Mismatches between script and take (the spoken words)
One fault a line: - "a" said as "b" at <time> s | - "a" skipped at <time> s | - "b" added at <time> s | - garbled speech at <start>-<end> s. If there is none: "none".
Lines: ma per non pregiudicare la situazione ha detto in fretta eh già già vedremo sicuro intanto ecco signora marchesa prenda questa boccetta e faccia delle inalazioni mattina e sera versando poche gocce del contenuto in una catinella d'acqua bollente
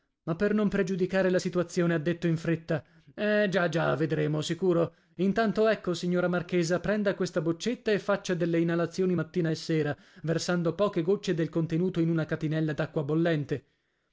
none